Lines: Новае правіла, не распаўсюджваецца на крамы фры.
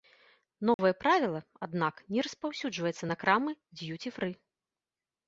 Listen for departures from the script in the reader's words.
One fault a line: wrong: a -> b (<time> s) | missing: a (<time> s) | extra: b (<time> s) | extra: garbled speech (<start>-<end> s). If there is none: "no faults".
extra: аднак (1.7 s)
extra: д'юці (3.8 s)